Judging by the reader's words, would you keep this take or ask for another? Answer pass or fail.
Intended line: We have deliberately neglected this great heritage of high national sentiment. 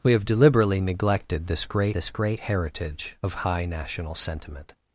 fail